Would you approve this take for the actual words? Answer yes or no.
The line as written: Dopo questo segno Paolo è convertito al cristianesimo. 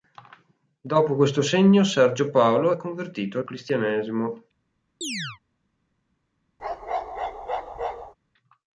no